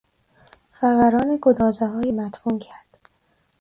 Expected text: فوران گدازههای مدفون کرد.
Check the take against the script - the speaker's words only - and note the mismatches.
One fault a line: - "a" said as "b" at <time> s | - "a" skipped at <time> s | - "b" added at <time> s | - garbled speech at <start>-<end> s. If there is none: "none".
none